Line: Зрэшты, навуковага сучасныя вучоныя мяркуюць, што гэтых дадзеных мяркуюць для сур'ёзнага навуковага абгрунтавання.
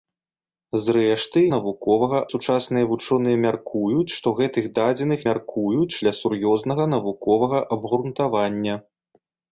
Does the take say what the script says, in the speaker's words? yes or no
yes